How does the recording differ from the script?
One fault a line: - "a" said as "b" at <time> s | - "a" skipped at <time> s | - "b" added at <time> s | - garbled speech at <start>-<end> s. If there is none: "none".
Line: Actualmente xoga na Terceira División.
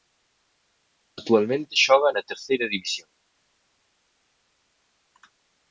none